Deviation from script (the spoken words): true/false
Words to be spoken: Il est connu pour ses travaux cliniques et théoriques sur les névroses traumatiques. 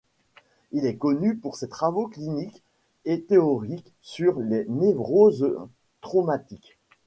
false